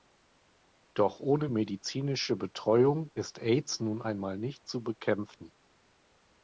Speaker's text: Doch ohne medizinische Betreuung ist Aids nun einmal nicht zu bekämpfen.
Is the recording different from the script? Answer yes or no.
no